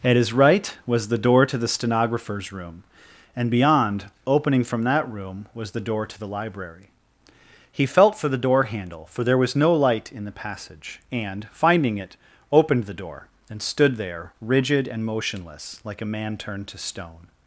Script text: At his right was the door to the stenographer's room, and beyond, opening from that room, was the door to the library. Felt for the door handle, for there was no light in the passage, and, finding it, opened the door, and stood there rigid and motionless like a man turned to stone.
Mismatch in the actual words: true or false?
true